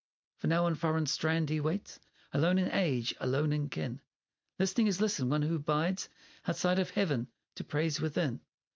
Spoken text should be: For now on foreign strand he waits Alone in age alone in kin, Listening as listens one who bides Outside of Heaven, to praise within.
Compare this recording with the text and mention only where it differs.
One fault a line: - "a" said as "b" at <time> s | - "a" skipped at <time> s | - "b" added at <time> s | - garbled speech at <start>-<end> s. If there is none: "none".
none